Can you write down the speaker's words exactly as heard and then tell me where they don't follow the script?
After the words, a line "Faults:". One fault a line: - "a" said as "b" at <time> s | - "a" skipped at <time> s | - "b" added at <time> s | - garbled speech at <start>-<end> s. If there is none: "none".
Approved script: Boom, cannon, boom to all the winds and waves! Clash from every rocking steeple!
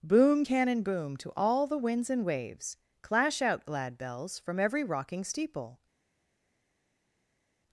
Boom, cannon, boom to all the winds and waves! Clash out, glad bells, from every rocking steeple!
Faults:
- "out glad bells" added at 3.4 s